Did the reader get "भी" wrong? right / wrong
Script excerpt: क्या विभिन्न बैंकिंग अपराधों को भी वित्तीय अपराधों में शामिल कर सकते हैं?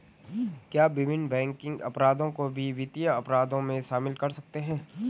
right